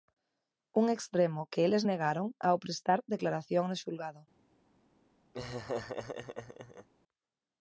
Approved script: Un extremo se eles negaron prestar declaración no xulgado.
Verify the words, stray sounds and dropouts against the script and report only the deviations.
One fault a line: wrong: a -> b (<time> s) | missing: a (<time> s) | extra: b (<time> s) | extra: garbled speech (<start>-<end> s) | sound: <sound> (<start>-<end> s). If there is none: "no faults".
wrong: se -> que (1.5 s)
extra: ao (2.5 s)
sound: laugh (5.3-6.9 s)